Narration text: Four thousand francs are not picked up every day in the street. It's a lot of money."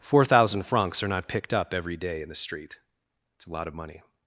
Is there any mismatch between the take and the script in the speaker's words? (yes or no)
no